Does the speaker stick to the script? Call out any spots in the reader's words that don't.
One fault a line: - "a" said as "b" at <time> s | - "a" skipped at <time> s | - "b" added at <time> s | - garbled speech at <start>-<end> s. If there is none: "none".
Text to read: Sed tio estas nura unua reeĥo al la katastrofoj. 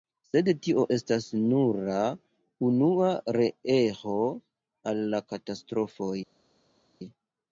none